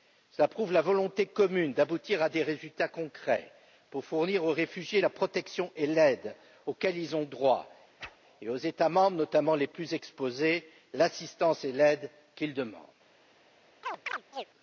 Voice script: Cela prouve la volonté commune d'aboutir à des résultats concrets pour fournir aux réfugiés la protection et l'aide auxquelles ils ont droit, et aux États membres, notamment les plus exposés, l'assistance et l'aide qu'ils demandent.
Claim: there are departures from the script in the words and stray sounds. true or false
true